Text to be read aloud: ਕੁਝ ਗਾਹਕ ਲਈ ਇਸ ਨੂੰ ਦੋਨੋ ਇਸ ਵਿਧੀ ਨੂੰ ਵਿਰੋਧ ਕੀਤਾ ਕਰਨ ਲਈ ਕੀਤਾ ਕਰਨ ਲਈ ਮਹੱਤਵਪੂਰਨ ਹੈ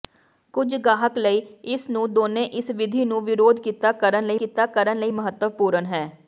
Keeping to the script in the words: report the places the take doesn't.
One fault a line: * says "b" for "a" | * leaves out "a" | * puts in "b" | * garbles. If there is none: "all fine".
all fine